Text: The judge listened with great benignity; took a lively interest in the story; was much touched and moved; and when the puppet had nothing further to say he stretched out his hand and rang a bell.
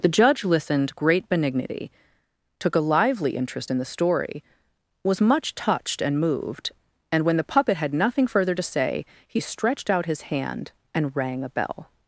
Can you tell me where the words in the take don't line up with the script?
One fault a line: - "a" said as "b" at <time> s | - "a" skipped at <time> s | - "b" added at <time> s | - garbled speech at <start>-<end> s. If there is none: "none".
- "with" skipped at 0.9 s